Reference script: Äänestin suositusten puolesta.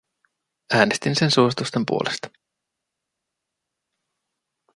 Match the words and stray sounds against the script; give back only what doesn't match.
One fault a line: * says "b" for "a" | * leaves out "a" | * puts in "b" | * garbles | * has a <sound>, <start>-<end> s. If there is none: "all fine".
* puts in "sen"